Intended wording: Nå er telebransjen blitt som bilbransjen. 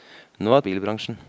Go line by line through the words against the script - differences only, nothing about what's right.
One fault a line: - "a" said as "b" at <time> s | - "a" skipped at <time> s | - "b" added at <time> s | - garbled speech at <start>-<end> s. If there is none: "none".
- "telebransjen blitt som" skipped at 0.6 s